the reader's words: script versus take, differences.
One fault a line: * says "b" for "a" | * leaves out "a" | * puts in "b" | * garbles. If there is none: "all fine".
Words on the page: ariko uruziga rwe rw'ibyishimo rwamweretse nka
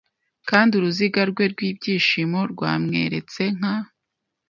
* says "kandi" for "ariko"